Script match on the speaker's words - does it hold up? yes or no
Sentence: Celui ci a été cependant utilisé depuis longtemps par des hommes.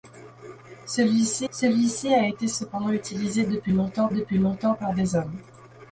no